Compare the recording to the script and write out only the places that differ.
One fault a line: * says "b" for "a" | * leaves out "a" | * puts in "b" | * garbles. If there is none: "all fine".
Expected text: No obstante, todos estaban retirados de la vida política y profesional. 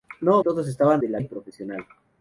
* leaves out "obstante"
* leaves out "retirados"
* leaves out "vida política"